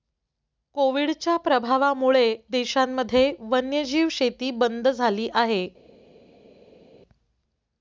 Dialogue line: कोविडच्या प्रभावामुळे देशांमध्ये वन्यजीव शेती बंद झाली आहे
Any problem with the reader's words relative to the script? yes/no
no